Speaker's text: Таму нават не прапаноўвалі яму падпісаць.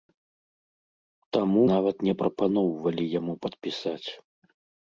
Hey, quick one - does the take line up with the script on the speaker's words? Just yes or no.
yes